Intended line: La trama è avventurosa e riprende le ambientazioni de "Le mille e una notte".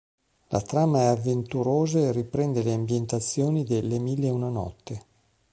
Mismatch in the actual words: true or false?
false